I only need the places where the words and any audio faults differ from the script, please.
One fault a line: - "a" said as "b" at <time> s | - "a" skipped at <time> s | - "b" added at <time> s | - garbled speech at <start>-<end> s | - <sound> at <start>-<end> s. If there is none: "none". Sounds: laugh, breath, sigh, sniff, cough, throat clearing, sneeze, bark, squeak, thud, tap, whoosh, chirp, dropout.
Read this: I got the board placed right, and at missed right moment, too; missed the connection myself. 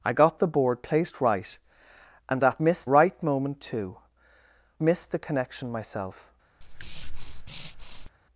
- breath at 6.6-8.1 s